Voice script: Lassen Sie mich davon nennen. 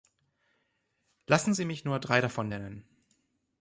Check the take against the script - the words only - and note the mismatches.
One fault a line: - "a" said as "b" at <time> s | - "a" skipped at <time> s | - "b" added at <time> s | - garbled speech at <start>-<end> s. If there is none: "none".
- "nur drei" added at 1.8 s